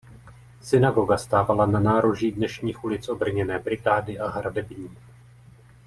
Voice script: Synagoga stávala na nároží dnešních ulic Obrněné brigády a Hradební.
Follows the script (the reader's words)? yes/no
yes